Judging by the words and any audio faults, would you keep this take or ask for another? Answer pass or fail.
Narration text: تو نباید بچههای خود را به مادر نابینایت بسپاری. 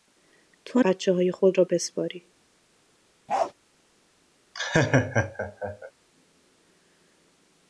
fail